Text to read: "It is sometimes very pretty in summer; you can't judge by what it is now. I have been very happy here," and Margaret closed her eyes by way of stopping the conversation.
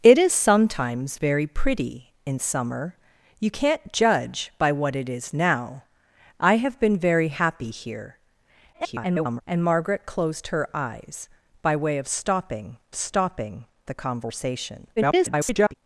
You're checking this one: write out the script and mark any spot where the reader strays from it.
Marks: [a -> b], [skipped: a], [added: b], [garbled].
"It is sometimes very pretty in summer; you can't judge by what it is now. I have been very happy here," [garbled] and Margaret closed her eyes by way of stopping [added: stopping] the conversation. [garbled]